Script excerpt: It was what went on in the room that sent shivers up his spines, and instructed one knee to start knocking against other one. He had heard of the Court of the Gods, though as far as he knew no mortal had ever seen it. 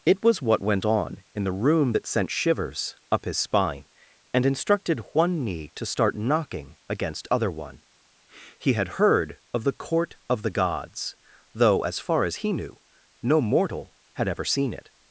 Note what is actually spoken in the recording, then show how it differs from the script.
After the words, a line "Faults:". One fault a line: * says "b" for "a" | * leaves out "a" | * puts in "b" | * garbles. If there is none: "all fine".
It was what went on in the room that sent shivers up his spine, and instructed one knee to start knocking against other one. He had heard of the Court of the Gods, though as far as he knew no mortal had ever seen it.
Faults:
* says "spine" for "spines"